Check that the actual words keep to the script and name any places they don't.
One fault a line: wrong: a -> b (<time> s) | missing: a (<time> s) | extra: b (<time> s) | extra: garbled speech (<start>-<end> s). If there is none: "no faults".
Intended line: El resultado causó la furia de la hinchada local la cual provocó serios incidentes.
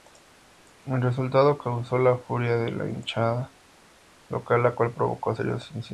no faults